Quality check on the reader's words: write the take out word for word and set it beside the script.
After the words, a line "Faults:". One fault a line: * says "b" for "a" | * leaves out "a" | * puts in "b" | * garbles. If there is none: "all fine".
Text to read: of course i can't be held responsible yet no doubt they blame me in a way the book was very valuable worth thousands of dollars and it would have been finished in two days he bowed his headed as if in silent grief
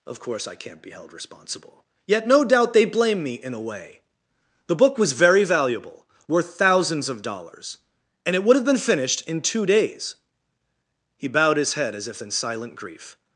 of course i can't be held responsible yet no doubt they blame me in a way the book was very valuable worth thousands of dollars and it would have been finished in two days he bowed his head as if in silent grief
Faults:
* says "head" for "headed"